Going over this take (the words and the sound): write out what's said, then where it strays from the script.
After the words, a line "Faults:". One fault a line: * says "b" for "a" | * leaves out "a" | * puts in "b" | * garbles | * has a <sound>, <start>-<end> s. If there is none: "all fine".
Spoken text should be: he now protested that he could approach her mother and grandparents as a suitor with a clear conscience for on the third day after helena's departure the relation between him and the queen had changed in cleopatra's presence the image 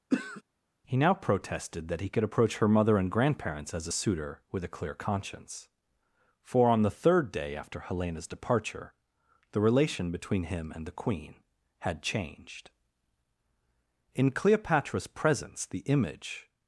he now protested that he could approach her mother and grandparents as a suitor with a clear conscience for on the third day after helena's departure the relation between him and the queen had changed in cleopatra's presence the image
Faults:
* has a throat clearing, 0.1-0.4 s